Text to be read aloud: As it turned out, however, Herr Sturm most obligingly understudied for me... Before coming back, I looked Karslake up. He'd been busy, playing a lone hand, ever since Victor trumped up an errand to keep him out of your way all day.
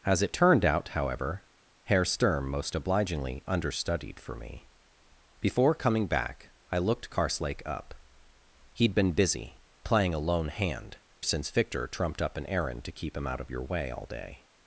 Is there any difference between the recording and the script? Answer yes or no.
yes